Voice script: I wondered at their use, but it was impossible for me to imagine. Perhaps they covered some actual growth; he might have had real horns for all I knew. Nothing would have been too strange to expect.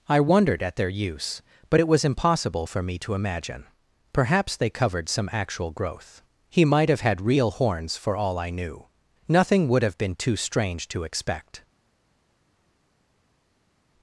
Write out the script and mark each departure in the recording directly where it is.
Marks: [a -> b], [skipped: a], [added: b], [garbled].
I wondered at their use, but it was impossible for me to imagine. Perhaps they covered some actual growth; he might have had real horns for all I knew. Nothing would have been too strange to expect.